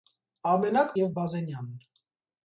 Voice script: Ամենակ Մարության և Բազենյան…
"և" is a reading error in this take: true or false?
true